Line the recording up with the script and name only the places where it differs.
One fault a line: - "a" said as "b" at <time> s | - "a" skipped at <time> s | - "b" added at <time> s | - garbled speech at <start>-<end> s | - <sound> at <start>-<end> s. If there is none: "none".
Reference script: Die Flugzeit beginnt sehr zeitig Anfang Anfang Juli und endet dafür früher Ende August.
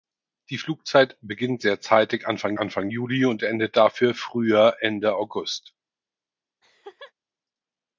- laugh at 6.6-7.1 s